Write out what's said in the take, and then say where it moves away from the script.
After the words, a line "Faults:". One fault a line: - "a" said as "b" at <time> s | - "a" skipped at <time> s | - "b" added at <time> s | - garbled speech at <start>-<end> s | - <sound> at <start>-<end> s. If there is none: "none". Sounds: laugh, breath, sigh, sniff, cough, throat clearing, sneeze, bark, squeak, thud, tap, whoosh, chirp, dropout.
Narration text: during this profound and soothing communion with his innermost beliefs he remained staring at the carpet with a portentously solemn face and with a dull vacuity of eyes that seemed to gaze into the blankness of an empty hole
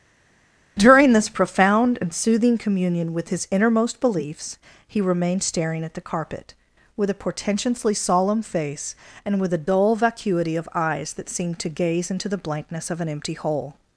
during this profound and soothing communion with his innermost beliefs he remained staring at the carpet with a portentously solemn face and with a dull vacuity of eyes that seemed to gaze into the blankness of an empty hole
Faults:
none